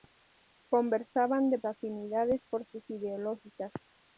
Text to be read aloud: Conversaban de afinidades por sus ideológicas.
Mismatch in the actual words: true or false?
false